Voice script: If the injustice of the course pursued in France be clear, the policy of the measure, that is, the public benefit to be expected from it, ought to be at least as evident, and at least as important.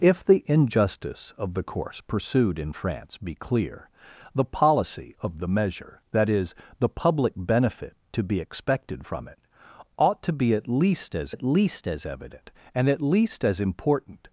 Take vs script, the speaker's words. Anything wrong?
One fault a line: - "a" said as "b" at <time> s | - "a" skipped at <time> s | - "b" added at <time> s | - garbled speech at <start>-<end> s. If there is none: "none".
- "at least as" added at 11.3 s